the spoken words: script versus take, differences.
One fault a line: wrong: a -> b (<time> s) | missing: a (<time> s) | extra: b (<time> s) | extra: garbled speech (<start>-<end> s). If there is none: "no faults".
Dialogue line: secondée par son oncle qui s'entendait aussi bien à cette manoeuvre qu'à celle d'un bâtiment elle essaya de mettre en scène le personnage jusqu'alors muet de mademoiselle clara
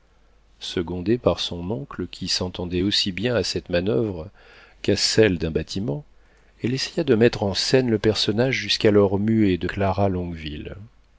missing: mademoiselle (9.7 s)